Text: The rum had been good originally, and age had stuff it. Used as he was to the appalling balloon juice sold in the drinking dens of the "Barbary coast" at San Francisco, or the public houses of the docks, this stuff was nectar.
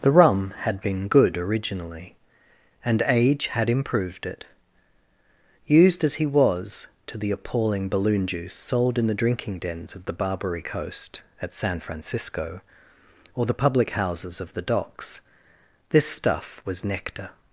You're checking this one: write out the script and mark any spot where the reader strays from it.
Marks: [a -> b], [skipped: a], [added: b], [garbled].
The rum had been good originally, and age had [stuff -> improved] it. Used as he was to the appalling balloon juice sold in the drinking dens of the "Barbary coast" at San Francisco, or the public houses of the docks, this stuff was nectar.